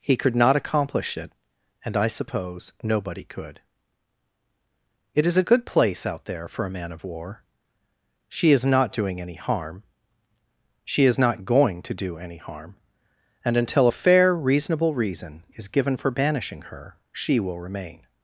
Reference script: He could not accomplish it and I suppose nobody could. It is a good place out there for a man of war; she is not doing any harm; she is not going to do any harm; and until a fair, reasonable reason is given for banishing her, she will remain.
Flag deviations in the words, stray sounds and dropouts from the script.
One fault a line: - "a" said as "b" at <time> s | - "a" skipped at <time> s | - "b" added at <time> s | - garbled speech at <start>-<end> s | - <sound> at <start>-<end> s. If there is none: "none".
none